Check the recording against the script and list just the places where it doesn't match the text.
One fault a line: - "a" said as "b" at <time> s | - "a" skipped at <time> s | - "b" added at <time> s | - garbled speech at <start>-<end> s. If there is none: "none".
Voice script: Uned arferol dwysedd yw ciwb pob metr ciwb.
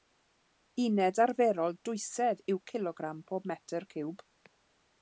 - "ciwb" said as "cilogram" at 2.7 s